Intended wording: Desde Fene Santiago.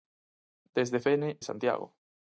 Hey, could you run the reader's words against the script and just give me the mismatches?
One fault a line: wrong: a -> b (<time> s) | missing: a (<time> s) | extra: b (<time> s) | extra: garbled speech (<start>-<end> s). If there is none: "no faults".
no faults